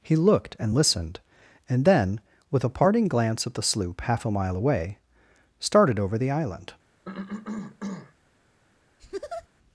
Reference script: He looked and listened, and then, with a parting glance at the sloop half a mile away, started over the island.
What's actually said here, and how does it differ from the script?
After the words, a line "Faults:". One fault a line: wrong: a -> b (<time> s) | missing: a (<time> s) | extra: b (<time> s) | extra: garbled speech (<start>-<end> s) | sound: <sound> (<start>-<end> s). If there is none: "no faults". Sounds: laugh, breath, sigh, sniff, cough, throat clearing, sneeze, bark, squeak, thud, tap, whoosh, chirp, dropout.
He looked and listened, and then, with a parting glance at the sloop half a mile away, started over the island.
Faults:
sound: cough (7.0-8.1 s)
sound: laugh (9.0-9.5 s)